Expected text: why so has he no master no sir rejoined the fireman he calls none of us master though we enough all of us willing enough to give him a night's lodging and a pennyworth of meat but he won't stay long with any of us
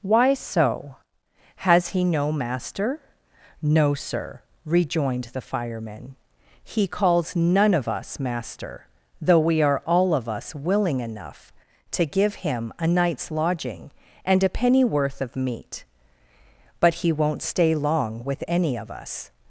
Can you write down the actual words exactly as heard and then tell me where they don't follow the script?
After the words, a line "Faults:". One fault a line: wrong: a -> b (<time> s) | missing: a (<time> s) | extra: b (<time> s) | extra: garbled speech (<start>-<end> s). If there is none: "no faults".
why so has he no master no sir rejoined the fireman he calls none of us master though we are all of us willing enough to give him a night's lodging and a pennyworth of meat but he won't stay long with any of us
Faults:
wrong: enough -> are (9.6 s)